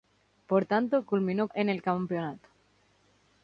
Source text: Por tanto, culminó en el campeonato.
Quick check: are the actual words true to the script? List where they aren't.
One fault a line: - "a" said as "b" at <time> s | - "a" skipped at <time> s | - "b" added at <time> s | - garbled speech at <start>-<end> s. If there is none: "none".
none